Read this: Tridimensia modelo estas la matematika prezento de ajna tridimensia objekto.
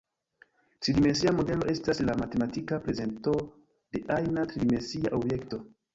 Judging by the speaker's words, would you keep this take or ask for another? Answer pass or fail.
pass